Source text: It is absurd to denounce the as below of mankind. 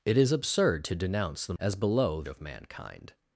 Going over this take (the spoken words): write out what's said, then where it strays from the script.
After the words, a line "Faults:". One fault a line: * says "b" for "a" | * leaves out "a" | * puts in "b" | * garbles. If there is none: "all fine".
It is absurd to denounce the as below of mankind.
Faults:
all fine